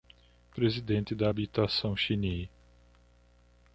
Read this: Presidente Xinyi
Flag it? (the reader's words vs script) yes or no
yes